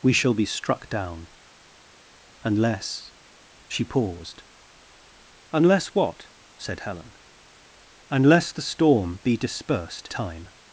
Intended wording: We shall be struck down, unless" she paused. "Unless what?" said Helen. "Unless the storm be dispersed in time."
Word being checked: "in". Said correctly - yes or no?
no